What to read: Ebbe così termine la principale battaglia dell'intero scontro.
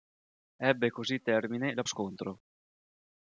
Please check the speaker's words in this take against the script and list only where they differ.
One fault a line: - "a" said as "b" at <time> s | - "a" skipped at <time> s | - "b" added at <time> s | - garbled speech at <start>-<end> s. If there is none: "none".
- "principale battaglia dell'intero" skipped at 1.8 s